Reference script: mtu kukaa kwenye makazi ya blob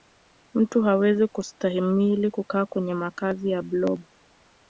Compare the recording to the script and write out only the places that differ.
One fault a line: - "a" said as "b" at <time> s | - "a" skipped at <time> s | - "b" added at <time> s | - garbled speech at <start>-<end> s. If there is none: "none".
- "hawezi kustahimili" added at 0.8 s